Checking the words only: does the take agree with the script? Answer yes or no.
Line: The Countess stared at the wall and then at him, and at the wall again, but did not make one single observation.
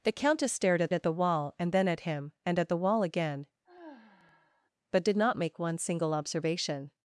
no